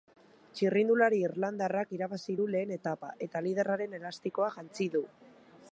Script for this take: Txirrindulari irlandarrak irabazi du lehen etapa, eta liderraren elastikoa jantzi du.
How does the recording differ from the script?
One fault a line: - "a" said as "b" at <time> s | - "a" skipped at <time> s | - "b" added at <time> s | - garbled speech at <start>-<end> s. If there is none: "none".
none